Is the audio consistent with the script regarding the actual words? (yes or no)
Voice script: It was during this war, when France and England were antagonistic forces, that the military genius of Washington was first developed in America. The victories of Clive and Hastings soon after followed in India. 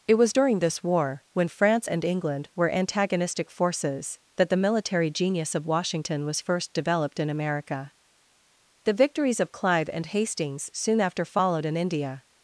yes